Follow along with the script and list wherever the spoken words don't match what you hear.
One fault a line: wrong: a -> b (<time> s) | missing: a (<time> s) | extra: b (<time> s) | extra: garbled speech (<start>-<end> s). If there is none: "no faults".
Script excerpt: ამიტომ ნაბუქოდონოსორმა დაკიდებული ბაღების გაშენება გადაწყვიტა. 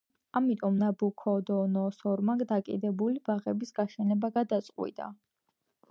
no faults